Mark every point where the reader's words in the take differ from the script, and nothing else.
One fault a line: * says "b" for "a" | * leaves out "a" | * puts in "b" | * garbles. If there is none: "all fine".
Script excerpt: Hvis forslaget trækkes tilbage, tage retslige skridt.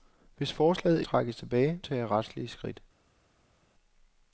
all fine